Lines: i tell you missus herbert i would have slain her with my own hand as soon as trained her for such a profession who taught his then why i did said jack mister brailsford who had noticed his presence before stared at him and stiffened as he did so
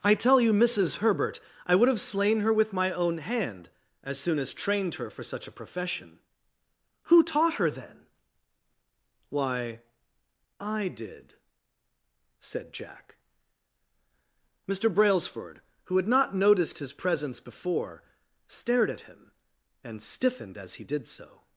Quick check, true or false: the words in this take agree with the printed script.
false